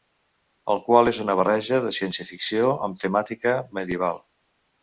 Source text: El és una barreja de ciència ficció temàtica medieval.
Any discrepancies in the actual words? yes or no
yes